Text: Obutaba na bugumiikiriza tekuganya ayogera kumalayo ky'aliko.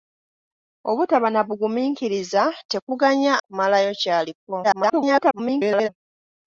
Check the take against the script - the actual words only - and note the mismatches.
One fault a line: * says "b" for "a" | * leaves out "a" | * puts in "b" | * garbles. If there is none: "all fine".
* leaves out "ayogera"
* garbles